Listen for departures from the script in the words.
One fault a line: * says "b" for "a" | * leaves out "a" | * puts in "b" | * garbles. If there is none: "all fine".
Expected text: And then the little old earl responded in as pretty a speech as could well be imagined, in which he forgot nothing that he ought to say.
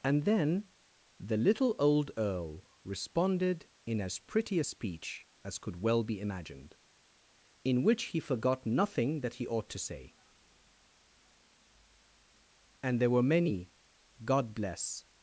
* puts in "And there were many God bless"